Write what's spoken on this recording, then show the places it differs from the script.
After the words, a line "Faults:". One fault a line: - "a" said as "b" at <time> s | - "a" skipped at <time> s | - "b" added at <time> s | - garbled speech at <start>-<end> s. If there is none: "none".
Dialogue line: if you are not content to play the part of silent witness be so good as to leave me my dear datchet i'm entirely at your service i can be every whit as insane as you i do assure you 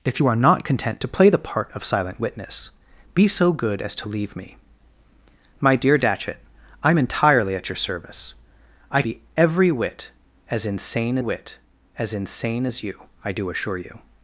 if you are not content to play the part of silent witness be so good as to leave me my dear datchet i'm entirely at your service i be every whit as insane whit as insane as you i do assure you
Faults:
- "can" skipped at 9.0 s
- "whit as insane" added at 11.2 s